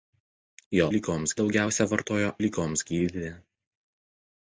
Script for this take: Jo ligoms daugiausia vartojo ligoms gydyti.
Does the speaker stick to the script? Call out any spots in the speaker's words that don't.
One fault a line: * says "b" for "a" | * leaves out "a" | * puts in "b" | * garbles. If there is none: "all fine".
all fine